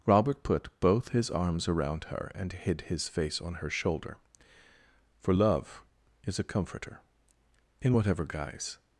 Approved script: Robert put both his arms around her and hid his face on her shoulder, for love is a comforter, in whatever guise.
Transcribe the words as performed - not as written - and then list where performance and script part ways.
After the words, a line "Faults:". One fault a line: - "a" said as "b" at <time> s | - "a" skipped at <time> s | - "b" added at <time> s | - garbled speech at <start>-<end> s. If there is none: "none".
Robert put both his arms around her and hid his face on her shoulder, for love is a comforter, in whatever guise.
Faults:
none